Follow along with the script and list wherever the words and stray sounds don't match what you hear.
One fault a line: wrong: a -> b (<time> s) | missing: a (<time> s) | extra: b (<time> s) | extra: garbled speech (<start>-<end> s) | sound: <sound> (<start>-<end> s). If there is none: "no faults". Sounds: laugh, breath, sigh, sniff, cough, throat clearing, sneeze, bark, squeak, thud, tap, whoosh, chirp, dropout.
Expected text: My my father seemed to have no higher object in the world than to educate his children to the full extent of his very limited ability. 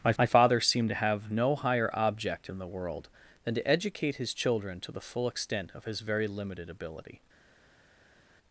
no faults